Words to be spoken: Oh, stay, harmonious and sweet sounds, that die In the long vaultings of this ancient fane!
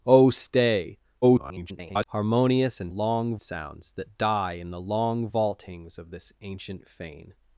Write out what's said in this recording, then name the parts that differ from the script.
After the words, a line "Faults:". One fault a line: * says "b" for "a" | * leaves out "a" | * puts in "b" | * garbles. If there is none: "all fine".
Oh, stay, [garbled] harmonious and long sounds, that die In the long vaultings of this ancient fane!
Faults:
* garbles
* says "long" for "sweet"